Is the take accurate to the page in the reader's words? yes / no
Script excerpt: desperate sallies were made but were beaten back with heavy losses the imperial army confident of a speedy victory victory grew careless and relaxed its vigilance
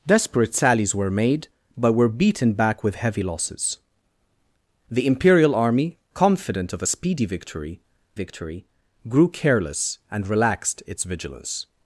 yes